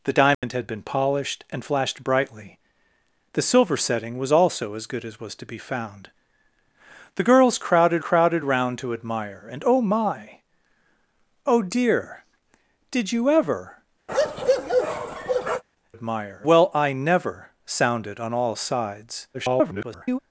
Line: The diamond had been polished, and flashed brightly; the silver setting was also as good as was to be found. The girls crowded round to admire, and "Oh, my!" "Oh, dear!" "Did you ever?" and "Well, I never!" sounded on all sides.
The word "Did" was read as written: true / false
true